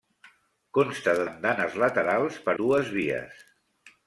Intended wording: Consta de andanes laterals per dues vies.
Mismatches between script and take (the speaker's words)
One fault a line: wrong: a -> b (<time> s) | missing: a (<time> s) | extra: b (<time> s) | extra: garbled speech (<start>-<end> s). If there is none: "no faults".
no faults